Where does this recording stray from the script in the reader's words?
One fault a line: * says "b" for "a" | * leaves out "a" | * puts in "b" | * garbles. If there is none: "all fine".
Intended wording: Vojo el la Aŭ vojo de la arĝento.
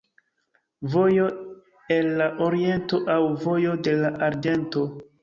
* puts in "Oriento"